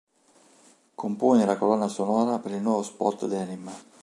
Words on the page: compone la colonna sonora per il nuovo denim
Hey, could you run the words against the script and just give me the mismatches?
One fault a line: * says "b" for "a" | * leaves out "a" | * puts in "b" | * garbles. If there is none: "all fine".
* puts in "spot"